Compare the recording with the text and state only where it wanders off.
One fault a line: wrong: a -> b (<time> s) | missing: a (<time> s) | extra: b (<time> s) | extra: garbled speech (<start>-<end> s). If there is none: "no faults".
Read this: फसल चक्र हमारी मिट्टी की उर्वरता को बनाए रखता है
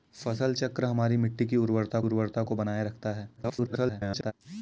extra: उर्वरता (2.0 s)
extra: garbled speech (3.4-4.3 s)